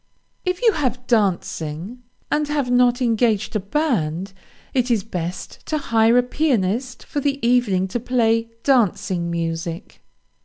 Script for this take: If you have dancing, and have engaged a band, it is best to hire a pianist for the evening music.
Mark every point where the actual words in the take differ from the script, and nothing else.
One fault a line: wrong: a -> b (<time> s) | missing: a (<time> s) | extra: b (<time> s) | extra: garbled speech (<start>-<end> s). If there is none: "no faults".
extra: not (2.7 s)
extra: to play dancing (7.9 s)